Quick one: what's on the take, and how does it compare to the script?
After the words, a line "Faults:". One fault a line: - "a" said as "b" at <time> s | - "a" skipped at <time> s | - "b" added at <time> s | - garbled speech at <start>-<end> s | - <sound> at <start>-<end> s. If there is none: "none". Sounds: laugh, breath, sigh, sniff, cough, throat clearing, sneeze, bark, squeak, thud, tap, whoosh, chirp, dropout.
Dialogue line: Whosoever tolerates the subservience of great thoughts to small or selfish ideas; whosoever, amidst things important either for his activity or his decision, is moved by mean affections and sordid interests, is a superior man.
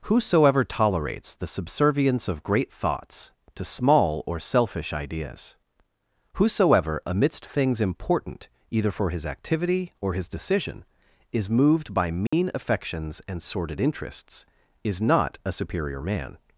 Whosoever tolerates the subservience of great thoughts to small or selfish ideas; whosoever, amidst things important either for his activity or his decision, is moved by mean affections and sordid interests, is not a superior man.
Faults:
- dropout at 12.3-12.3 s
- "not" added at 15.0 s